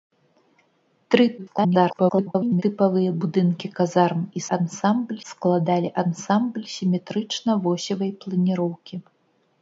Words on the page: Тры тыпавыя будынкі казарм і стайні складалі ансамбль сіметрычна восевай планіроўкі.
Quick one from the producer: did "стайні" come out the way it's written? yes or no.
no